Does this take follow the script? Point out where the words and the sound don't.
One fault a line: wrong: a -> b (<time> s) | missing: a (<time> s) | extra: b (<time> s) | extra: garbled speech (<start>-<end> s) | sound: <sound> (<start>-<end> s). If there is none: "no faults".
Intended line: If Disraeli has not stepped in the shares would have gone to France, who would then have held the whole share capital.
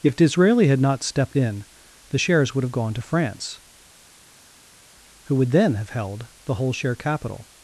wrong: has -> had (0.7 s)